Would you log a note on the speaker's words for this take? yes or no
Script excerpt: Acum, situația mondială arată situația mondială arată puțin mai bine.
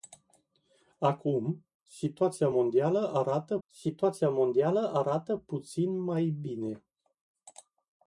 no